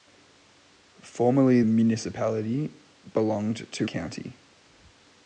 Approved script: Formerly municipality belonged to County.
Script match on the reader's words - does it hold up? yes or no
yes